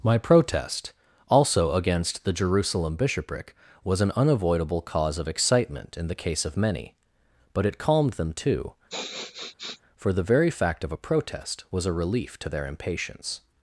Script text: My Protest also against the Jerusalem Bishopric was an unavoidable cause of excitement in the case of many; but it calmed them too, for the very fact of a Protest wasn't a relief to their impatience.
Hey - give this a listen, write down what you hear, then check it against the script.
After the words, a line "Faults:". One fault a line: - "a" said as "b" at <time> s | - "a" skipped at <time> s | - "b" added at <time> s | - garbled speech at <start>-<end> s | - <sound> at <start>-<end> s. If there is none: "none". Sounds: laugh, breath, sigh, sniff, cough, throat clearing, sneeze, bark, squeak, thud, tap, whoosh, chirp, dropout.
My Protest also against the Jerusalem Bishopric was an unavoidable cause of excitement in the case of many; but it calmed them too, for the very fact of a Protest was a relief to their impatience.
Faults:
- sniff at 8.9-9.8 s
- "wasn't" said as "was" at 11.7 s